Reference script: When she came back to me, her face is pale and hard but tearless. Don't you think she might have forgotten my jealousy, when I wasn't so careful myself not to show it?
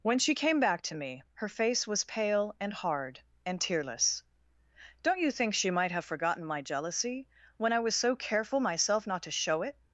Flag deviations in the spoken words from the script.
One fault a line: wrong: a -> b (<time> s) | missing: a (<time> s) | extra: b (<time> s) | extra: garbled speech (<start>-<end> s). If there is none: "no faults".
wrong: is -> was (1.9 s)
wrong: but -> and (3.5 s)
wrong: wasn't -> was (7.8 s)